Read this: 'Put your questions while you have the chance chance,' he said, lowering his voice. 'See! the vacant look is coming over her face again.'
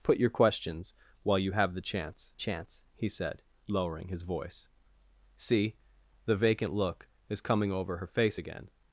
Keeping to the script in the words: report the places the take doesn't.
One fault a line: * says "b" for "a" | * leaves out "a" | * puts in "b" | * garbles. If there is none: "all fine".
all fine